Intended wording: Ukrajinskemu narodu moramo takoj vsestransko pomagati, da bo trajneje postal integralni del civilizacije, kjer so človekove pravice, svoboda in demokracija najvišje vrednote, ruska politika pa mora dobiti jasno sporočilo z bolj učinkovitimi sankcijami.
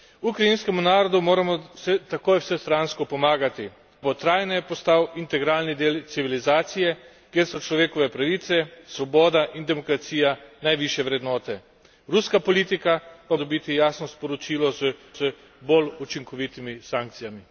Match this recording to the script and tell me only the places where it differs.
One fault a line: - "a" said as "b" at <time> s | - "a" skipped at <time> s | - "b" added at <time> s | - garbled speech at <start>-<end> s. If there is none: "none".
- "da" skipped at 3.7 s
- "mora" skipped at 13.4 s
- "z" added at 15.1 s